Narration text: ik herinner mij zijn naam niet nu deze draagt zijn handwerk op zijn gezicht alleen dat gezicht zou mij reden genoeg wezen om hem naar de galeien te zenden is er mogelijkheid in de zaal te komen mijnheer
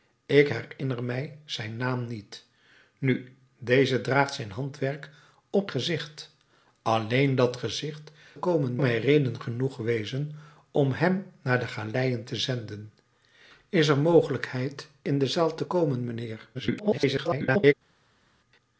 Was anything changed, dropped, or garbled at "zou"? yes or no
yes